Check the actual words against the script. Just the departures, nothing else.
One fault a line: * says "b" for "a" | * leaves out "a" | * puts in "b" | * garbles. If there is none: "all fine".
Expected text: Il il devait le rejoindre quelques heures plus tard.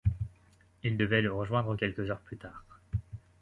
* leaves out "il"